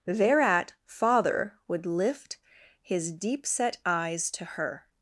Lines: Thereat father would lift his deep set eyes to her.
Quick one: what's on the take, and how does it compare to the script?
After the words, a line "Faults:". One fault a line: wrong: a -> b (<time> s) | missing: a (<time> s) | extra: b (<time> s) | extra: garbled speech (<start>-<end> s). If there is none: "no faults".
Thereat father would lift his deep set eyes to her.
Faults:
no faults